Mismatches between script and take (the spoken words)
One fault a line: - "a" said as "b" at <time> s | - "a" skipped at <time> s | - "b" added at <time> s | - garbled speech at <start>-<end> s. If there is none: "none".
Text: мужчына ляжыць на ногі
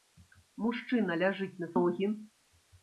none